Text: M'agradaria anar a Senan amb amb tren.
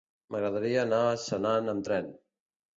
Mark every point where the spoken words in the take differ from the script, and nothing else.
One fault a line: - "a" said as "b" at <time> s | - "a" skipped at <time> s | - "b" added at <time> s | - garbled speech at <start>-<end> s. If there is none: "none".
- "amb" skipped at 1.9 s